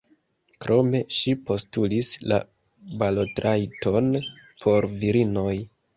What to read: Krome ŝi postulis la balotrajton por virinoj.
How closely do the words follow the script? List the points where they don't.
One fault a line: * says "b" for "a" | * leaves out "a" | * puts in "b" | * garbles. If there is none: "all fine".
all fine